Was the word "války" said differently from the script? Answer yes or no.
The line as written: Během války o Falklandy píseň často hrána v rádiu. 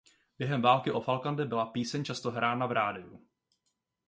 no